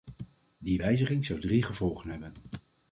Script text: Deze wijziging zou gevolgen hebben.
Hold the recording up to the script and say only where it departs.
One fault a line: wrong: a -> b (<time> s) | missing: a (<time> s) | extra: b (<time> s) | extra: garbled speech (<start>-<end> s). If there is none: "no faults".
wrong: Deze -> Die (0.6 s)
extra: drie (1.4 s)